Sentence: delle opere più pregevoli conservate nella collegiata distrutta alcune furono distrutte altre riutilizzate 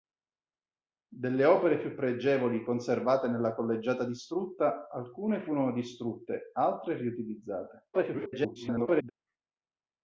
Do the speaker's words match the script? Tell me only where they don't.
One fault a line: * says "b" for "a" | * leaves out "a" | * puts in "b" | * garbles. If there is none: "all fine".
* garbles